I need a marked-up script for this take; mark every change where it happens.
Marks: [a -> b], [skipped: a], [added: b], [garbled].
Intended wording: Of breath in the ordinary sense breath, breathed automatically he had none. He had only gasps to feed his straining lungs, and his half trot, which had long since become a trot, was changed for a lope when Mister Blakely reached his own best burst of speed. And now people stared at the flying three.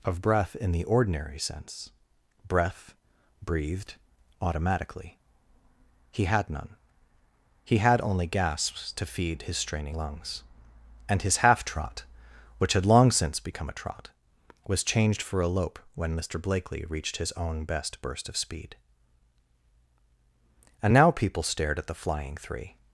Of breath in the ordinary sense breath, breathed automatically he had none. He had only gasps to feed his straining lungs, and his half trot, which had long since become a trot, was changed for a lope when Mister Blakely reached his own best burst of speed. And now people stared at the flying three.